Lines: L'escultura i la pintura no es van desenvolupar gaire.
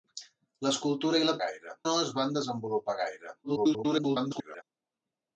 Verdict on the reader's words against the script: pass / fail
fail